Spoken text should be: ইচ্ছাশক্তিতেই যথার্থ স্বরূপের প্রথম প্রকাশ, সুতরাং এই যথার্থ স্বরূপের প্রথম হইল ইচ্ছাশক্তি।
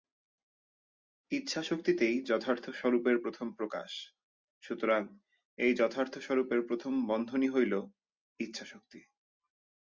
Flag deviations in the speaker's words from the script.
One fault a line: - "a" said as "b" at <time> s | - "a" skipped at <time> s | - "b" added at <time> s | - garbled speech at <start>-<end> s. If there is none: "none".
- "বন্ধনই" added at 7.1 s